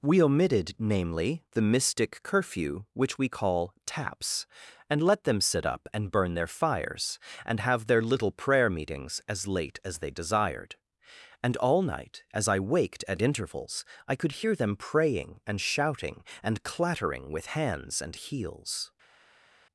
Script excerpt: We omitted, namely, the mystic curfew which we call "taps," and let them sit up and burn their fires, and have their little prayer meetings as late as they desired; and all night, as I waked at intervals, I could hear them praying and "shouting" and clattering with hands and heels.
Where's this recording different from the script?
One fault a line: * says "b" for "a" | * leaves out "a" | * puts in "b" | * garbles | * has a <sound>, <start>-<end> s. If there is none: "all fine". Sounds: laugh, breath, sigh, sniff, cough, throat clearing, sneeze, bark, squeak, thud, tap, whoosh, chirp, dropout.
all fine